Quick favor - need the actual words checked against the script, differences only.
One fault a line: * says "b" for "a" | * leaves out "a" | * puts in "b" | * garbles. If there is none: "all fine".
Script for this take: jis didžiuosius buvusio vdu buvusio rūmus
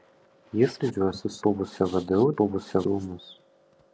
all fine